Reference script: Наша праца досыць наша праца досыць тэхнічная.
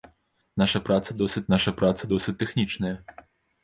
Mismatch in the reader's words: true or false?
false